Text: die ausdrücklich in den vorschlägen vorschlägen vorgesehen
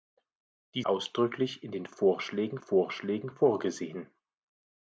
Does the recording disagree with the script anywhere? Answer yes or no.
no